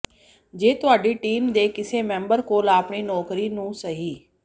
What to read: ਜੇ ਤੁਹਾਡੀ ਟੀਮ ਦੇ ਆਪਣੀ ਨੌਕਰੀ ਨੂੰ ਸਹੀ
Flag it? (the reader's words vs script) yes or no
yes